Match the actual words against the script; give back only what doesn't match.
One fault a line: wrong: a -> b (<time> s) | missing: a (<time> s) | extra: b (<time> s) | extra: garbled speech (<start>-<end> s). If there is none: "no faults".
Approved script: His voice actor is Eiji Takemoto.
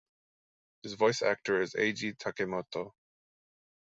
no faults